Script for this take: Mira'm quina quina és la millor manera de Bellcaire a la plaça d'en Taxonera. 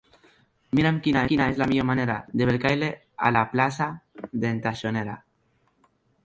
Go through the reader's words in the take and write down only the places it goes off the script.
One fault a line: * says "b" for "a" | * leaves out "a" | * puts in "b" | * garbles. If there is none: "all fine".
all fine